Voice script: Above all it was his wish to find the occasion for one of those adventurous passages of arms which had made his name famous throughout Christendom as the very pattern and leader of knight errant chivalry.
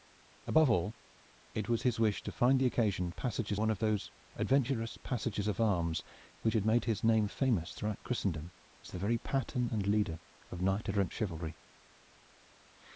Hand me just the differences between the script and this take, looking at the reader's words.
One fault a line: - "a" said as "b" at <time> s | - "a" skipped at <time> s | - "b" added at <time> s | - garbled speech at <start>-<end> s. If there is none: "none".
- "for" said as "passages" at 3.1 s